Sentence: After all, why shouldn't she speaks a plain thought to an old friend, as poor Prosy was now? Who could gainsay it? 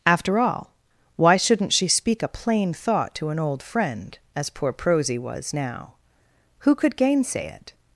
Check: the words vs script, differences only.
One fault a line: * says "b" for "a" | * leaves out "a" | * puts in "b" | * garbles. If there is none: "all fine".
* says "speak" for "speaks"